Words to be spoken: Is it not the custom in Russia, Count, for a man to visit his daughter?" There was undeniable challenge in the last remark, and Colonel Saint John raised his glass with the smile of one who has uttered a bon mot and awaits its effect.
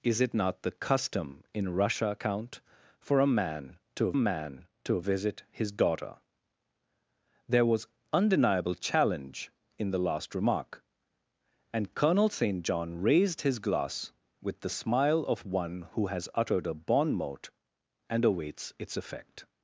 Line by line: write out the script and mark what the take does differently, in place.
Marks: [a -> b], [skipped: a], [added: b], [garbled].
Is it not the custom in Russia, Count, for a man to [added: man to] visit his daughter?" There was undeniable challenge in the last remark, and Colonel Saint John raised his glass with the smile of one who has uttered a bon mot and awaits its effect.